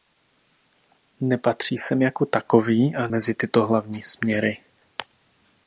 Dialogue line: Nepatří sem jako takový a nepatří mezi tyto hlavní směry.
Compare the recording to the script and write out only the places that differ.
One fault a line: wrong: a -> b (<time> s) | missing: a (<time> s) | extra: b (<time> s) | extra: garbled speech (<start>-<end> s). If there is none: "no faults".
missing: nepatří (3.1 s)